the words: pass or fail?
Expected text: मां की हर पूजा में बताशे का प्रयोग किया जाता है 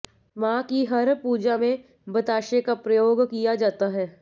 pass